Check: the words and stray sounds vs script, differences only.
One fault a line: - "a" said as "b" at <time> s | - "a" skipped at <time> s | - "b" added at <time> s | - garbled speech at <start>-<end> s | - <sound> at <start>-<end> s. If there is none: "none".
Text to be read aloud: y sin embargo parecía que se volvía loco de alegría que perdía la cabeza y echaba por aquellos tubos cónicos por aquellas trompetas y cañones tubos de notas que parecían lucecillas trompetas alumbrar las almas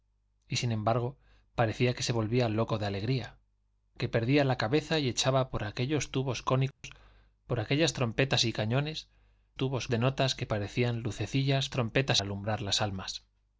- dropout at 6.7-6.8 s